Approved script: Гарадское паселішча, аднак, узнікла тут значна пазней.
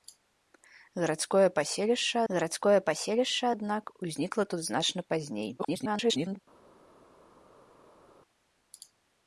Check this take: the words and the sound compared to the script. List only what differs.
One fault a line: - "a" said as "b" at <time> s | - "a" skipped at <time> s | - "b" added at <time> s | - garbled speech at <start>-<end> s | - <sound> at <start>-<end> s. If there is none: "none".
- "гарадское паселішча" added at 2.3 s
- garbled speech at 5.6-6.4 s